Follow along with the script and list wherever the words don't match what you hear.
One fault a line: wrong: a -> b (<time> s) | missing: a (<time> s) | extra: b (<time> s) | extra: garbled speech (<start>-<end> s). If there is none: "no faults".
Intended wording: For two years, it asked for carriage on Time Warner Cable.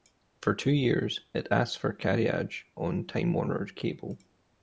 no faults